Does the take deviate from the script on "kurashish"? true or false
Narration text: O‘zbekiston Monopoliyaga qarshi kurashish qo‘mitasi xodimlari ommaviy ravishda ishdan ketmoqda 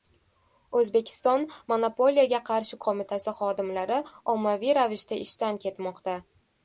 true